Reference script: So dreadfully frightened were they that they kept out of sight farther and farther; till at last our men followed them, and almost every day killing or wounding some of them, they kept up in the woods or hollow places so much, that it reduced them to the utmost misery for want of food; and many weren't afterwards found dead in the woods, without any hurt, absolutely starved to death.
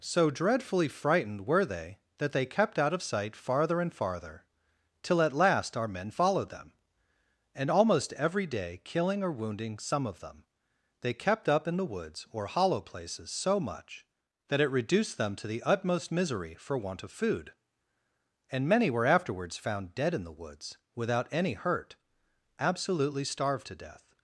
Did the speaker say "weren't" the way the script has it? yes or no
no